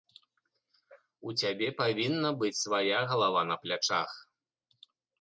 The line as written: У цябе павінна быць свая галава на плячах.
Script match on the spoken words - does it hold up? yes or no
yes